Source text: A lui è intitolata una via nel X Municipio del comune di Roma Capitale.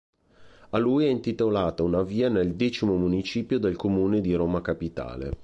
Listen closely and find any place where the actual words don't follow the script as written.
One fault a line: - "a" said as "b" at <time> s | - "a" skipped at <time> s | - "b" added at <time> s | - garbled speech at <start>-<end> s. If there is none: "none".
none